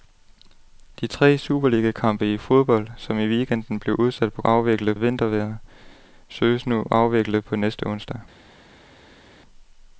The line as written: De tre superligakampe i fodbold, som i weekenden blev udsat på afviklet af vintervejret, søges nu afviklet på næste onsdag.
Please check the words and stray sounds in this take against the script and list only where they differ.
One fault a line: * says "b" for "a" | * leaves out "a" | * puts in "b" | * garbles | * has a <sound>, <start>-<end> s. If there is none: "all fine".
all fine